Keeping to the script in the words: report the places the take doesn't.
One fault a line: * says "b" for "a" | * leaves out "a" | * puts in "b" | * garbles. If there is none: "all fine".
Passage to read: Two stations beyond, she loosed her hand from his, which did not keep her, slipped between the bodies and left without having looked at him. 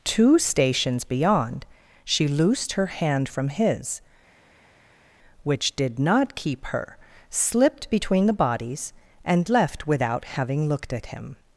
all fine